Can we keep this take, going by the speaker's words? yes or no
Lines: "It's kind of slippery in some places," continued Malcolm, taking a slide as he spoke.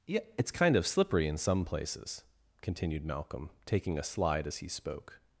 no